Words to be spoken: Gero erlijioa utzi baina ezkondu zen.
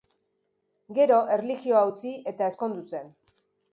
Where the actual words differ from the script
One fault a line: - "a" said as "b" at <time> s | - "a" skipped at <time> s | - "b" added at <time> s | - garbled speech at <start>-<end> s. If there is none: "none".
- "baina" said as "eta" at 2.3 s